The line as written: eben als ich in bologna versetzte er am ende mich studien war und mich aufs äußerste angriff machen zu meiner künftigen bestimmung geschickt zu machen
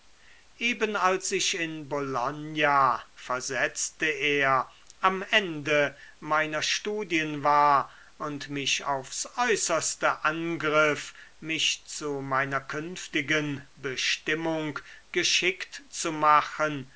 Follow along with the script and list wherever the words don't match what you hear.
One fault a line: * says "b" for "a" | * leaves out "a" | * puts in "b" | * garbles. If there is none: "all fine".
* says "meiner" for "mich"
* says "mich" for "machen"